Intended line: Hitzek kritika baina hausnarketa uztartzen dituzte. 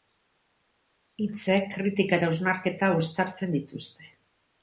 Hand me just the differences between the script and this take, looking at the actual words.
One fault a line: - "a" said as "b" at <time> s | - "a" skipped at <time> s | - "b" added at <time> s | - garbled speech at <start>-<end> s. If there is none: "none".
- "baina" said as "eta" at 2.2 s